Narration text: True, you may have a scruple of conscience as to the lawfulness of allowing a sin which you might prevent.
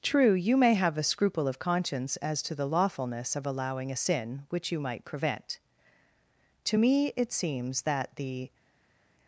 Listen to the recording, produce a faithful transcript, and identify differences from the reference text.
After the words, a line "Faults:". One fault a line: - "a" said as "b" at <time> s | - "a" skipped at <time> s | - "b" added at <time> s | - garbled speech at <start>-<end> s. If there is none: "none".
True, you may have a scruple of conscience as to the lawfulness of allowing a sin which you might prevent. To me it seems that the
Faults:
- "To me it seems that the" added at 6.7 s